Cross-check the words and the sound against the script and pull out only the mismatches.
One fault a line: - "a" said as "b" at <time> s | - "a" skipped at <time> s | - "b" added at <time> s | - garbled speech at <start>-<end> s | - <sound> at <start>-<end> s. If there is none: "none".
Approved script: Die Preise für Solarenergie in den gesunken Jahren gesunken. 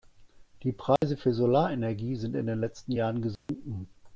- dropout at 1.0-1.0 s
- "sind" added at 2.1 s
- "gesunken" said as "letzten" at 2.6 s
- dropout at 3.4-3.5 s